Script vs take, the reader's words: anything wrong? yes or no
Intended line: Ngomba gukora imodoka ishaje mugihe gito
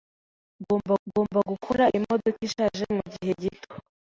yes